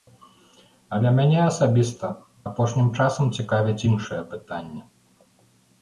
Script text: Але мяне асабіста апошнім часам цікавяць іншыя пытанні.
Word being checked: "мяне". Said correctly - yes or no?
yes